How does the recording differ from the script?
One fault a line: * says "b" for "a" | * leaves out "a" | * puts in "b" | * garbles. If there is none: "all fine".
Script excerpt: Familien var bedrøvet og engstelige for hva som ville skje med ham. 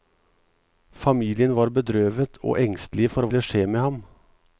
* leaves out "hva som"